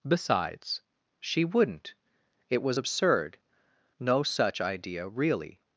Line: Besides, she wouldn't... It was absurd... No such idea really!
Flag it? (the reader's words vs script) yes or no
no